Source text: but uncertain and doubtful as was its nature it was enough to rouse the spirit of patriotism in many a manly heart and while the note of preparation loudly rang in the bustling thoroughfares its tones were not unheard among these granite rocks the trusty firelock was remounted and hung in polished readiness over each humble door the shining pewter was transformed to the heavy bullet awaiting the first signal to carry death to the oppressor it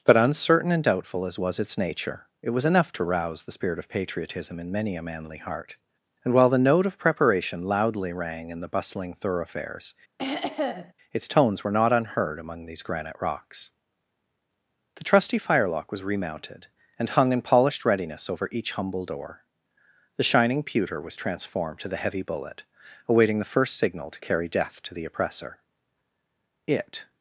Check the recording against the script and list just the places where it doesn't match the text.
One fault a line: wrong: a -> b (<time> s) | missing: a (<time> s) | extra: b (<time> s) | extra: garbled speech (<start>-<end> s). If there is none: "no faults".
no faults